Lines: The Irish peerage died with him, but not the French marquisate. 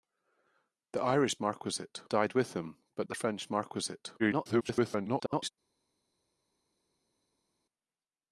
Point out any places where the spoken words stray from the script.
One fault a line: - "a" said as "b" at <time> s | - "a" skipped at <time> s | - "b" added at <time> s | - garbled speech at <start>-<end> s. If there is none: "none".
- "peerage" said as "marquisate" at 1.4 s
- "not" skipped at 3.1 s
- garbled speech at 4.2-5.5 s